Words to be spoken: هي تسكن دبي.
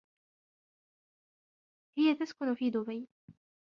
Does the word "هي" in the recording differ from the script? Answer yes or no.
no